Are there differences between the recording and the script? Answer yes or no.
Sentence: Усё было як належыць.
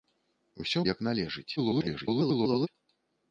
yes